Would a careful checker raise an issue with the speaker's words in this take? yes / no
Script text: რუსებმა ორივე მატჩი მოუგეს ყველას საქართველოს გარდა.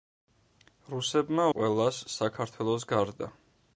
yes